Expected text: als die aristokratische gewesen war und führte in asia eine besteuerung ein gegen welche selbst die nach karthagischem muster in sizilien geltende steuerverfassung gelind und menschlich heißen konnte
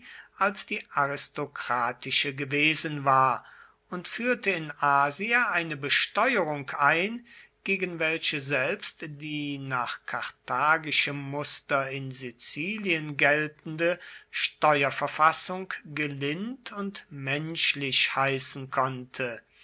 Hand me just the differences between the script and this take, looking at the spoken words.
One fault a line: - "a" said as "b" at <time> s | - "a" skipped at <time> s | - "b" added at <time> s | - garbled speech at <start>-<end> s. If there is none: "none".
none